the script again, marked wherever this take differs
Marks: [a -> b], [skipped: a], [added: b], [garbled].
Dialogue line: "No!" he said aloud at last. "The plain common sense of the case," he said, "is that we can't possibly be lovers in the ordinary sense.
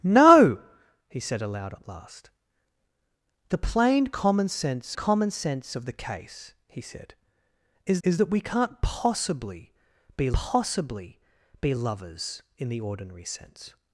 "No!" he said aloud at last. "The plain common sense [added: common sense] of the case," he said, "is [added: is] that we can't possibly be [added: possibly be] lovers in the ordinary sense.